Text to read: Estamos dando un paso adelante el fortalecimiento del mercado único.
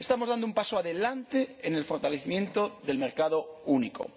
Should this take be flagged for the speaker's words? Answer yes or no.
yes